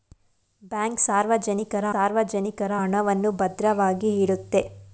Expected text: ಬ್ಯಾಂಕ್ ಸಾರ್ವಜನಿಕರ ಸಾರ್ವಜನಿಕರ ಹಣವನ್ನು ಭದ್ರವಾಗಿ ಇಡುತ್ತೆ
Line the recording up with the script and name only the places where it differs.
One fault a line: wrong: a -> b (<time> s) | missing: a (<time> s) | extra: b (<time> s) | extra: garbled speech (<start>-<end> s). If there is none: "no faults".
no faults